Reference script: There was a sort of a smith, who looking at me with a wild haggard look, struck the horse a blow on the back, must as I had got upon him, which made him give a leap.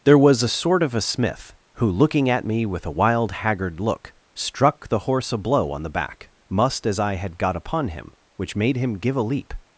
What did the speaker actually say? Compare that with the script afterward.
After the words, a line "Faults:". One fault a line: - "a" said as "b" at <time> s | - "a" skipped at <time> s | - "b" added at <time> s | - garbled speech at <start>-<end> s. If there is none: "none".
There was a sort of a smith, who looking at me with a wild haggard look, struck the horse a blow on the back, must as I had got upon him, which made him give a leap.
Faults:
none